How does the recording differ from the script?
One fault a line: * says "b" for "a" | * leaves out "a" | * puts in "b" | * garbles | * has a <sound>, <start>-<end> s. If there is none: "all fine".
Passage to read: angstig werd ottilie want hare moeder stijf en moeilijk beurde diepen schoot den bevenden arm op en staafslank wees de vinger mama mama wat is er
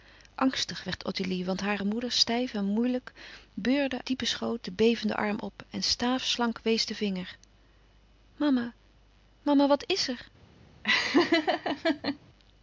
* has a laugh, 10.8-12.2 s